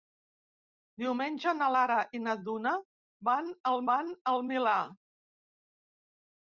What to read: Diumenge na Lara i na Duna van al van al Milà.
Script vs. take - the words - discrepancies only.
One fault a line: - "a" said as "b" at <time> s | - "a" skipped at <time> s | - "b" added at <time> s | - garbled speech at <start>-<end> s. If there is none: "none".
none